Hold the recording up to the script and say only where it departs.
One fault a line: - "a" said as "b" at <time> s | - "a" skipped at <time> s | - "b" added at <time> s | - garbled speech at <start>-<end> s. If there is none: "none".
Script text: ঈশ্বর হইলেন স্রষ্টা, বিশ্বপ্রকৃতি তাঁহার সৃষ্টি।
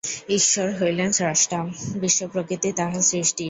none